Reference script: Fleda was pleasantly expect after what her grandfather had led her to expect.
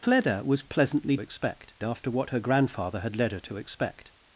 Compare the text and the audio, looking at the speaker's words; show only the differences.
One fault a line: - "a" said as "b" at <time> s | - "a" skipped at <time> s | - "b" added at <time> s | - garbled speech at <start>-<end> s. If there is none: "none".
none